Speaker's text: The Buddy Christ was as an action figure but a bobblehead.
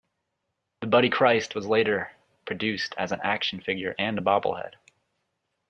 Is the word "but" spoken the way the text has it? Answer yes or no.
no